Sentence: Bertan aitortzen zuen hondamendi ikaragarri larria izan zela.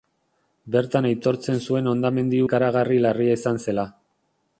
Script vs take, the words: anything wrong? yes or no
no